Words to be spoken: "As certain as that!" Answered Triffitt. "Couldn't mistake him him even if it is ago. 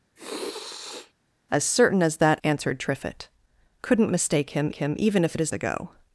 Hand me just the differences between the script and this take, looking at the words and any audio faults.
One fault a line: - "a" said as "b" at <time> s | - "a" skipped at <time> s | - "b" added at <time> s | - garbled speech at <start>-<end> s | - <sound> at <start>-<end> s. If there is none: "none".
- sniff at 0.2-1.1 s